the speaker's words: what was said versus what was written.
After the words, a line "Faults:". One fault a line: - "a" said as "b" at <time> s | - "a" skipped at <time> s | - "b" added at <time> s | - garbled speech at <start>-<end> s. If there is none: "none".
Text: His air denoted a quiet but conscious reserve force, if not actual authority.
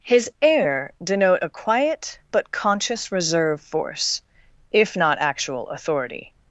His air denote a quiet but conscious reserve force, if not actual authority.
Faults:
- "denoted" said as "denote" at 1.0 s